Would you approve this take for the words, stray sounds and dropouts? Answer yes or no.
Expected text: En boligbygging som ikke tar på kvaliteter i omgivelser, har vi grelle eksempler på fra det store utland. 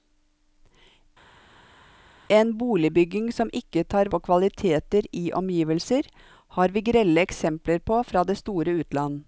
yes